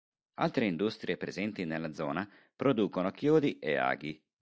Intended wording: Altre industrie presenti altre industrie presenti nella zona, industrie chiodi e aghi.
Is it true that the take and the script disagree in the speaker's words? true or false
true